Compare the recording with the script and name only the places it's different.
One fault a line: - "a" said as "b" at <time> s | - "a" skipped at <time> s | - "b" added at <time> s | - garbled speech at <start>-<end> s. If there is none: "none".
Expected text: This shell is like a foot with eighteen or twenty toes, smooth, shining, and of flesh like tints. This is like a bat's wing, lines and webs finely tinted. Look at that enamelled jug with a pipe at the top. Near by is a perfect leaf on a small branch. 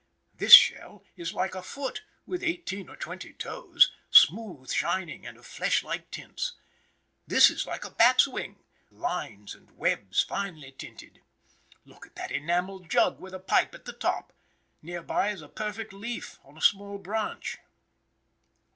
none